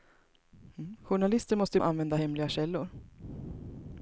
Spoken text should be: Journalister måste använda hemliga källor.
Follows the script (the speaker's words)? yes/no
yes